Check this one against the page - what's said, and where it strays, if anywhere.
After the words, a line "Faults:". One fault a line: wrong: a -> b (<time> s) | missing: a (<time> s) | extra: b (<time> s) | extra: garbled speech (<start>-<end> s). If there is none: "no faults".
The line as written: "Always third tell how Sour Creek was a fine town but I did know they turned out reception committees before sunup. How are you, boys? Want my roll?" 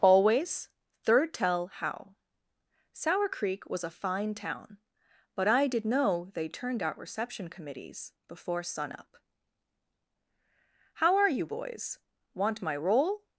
"Always third tell how Sour Creek was a fine town but I did know they turned out reception committees before sunup. How are you, boys? Want my roll?"
Faults:
no faults